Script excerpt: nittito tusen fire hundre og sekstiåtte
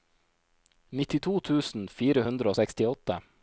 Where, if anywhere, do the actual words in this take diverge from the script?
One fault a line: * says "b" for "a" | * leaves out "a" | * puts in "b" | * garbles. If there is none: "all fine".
all fine